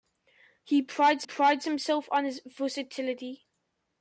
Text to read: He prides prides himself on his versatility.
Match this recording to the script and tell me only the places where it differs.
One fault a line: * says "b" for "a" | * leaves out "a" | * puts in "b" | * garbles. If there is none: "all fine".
all fine